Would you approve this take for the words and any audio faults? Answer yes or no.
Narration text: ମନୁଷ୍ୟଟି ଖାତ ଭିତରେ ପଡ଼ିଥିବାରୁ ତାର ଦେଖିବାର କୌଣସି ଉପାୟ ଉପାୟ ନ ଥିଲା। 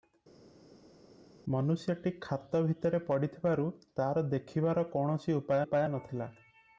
yes